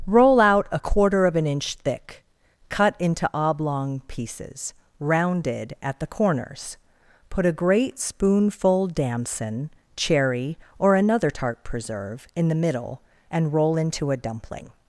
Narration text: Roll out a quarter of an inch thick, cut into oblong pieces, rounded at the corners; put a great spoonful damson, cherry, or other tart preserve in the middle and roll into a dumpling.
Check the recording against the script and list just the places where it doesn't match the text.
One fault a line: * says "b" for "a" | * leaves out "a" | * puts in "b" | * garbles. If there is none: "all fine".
* says "another" for "other"